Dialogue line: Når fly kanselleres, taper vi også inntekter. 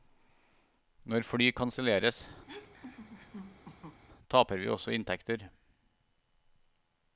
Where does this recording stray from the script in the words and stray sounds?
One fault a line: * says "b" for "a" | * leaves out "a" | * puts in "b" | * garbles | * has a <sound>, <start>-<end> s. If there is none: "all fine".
* has a laugh, 2.5-4.0 s